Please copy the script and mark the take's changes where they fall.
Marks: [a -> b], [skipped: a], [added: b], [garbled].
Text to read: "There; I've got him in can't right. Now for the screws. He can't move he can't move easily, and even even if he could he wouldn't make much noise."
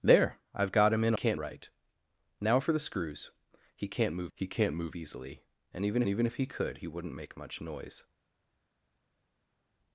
"There; I've got him in can't right. Now for the screws. He can't move he can't move easily, and even even if he could he wouldn't make much noise."